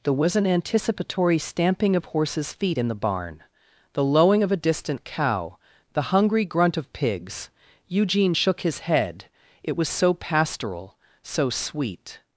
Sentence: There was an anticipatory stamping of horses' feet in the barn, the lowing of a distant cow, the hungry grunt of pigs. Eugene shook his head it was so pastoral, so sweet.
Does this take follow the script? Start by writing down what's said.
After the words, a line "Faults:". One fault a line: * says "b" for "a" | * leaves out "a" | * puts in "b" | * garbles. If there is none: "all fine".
There was an anticipatory stamping of horses' feet in the barn, the lowing of a distant cow, the hungry grunt of pigs. Eugene shook his head it was so pastoral, so sweet.
Faults:
all fine